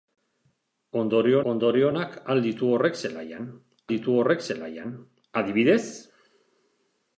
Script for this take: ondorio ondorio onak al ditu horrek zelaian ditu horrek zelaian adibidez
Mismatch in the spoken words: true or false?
false